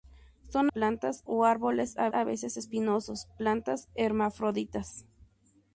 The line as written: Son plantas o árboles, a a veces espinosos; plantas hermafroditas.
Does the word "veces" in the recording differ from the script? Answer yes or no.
no